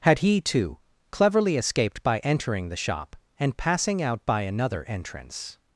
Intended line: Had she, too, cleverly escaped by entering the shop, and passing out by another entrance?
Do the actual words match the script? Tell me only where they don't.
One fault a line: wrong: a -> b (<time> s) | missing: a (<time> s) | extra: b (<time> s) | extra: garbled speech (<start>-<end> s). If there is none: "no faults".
wrong: she -> he (0.2 s)